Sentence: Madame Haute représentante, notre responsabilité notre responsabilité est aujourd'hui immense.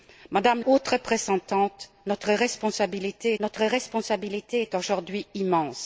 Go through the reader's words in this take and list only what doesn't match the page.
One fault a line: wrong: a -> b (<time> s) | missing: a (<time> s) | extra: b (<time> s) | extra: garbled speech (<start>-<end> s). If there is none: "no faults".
no faults